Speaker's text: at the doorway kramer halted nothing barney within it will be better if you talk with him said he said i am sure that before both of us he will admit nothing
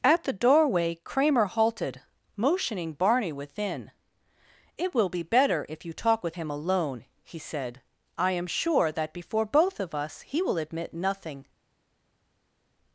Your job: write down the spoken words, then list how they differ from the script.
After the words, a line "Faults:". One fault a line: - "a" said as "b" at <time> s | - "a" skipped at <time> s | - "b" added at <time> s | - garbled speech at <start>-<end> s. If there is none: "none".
at the doorway kramer halted motioning barney within it will be better if you talk with him alone he said i am sure that before both of us he will admit nothing
Faults:
- "nothing" said as "motioning" at 2.4 s
- "said" said as "alone" at 6.5 s